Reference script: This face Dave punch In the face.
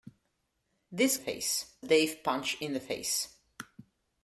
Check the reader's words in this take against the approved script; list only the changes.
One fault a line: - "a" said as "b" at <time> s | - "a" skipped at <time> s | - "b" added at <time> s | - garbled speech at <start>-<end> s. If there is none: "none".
none